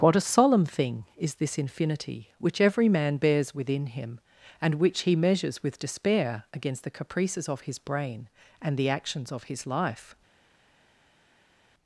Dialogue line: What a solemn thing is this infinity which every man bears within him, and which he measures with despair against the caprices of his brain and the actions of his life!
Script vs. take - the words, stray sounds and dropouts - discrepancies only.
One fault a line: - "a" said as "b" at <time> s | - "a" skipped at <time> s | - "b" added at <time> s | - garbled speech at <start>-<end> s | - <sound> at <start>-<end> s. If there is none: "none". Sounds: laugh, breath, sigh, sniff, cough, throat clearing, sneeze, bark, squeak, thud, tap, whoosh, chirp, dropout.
none